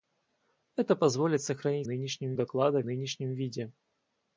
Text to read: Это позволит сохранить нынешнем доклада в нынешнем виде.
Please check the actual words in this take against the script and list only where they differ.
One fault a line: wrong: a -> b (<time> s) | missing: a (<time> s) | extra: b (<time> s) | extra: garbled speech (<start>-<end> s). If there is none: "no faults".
no faults